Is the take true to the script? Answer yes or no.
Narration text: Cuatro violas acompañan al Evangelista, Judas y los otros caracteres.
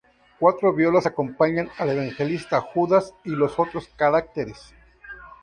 yes